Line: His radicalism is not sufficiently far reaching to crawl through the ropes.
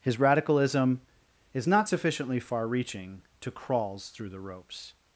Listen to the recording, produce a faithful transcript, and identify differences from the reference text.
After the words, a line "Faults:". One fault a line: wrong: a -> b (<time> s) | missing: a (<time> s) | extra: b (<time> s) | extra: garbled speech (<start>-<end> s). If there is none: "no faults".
His radicalism is not sufficiently far reaching to crawls through the ropes.
Faults:
wrong: crawl -> crawls (3.5 s)